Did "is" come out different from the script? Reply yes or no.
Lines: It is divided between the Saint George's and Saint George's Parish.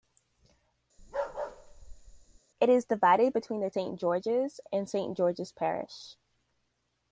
no